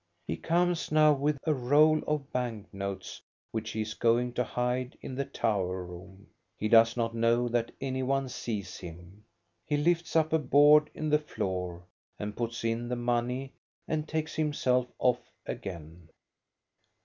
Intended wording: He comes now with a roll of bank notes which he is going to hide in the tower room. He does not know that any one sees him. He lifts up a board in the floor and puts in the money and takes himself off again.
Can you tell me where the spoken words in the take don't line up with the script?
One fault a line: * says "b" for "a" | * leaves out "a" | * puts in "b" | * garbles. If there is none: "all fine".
all fine